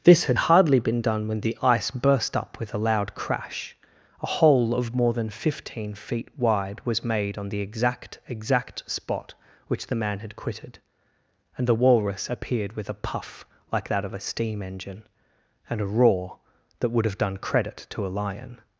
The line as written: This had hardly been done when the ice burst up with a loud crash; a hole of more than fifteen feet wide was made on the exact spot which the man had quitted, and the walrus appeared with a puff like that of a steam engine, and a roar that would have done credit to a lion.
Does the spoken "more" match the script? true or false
true